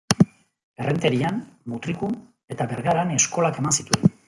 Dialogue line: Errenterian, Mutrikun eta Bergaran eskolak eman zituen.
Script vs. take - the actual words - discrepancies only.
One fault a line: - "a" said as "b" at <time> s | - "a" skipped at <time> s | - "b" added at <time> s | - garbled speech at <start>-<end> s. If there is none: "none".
none